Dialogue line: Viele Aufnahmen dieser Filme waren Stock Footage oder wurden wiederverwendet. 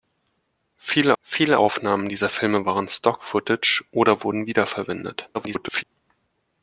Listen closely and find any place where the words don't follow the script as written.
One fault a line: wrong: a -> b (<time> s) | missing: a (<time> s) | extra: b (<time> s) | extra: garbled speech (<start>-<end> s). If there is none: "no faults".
extra: viele (1.2 s)
extra: garbled speech (5.3-5.8 s)